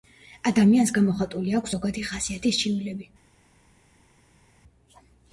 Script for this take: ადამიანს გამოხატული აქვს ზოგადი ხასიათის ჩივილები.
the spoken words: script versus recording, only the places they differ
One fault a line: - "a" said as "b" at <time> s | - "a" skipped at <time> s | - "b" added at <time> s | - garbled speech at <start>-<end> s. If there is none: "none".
none